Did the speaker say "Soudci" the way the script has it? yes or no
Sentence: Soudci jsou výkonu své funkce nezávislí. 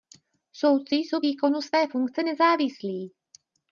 yes